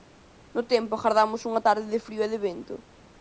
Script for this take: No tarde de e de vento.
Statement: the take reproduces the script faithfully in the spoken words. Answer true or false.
false